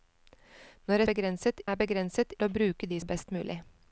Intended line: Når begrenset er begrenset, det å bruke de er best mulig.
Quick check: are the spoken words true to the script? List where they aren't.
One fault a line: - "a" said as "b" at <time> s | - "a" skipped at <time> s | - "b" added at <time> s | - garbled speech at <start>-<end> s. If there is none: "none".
none